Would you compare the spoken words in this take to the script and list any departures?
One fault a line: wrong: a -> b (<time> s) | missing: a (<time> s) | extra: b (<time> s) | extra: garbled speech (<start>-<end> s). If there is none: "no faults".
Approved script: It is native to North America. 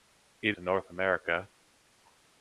missing: is native (0.6 s)